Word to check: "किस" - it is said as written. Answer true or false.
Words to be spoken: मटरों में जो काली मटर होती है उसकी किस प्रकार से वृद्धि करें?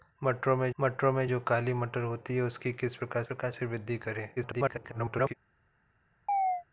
true